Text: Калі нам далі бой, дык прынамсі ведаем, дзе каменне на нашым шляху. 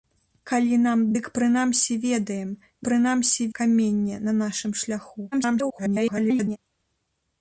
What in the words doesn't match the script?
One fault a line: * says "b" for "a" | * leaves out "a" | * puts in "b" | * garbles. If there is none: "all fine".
* leaves out "далі бой"
* says "прынамсі" for "дзе"
* garbles